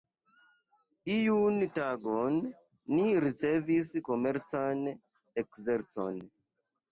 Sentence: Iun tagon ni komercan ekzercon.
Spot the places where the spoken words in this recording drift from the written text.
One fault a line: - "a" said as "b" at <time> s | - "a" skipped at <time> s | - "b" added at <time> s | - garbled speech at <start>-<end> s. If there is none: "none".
- "ricevis" added at 3.2 s